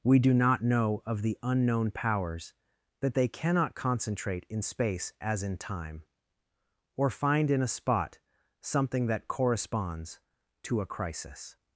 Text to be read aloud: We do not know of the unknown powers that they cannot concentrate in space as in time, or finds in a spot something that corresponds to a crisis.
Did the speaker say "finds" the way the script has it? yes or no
no